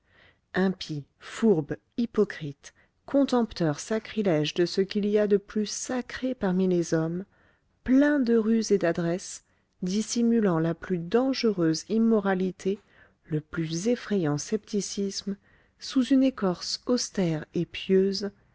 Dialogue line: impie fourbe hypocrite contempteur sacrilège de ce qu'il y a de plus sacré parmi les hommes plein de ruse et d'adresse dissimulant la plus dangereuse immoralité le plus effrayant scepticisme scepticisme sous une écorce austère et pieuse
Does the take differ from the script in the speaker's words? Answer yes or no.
yes